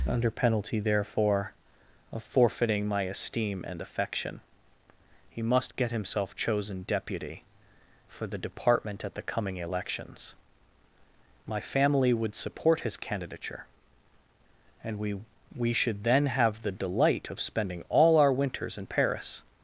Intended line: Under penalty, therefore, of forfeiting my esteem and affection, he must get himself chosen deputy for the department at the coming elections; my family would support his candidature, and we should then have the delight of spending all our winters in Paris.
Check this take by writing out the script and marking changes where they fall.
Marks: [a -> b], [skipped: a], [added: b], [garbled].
Under penalty, therefore, of forfeiting my esteem and affection, he must get himself chosen deputy for the department at the coming elections; my family would support his candidature, and we [added: we] should then have the delight of spending all our winters in Paris.